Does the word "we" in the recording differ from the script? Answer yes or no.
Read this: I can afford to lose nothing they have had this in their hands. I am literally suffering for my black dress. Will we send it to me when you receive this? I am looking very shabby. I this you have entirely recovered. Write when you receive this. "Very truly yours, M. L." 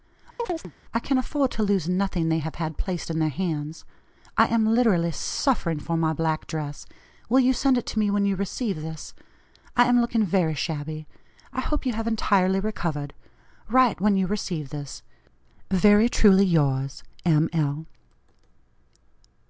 yes